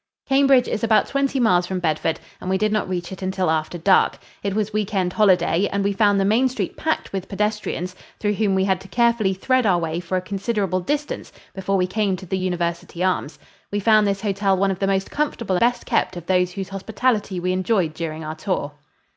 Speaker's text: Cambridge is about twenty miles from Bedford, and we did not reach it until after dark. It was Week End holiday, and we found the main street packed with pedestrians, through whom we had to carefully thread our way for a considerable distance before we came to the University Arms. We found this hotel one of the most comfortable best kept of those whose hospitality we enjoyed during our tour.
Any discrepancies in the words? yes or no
no